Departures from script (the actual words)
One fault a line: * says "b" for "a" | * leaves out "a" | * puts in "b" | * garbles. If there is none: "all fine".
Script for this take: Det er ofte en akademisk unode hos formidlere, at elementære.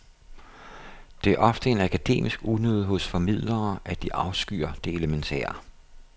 * puts in "de afskyr det"